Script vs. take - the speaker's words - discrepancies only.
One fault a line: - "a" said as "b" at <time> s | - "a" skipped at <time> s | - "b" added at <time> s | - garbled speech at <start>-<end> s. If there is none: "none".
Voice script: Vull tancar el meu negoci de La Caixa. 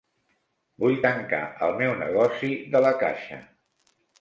none